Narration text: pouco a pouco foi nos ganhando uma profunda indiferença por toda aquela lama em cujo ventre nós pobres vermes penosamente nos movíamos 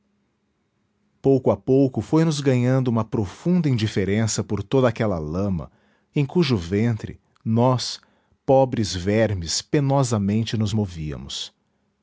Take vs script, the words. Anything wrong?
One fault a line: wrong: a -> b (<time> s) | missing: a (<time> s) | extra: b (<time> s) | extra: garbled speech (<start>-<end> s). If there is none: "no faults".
no faults